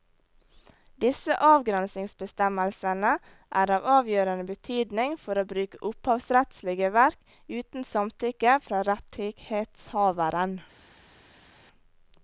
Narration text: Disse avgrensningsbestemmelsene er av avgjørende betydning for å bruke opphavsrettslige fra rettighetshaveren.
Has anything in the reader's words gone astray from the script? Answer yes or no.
yes